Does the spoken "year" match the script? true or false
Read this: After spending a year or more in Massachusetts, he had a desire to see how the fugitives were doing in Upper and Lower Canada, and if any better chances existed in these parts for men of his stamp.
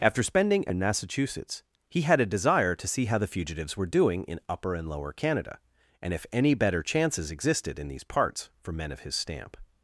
false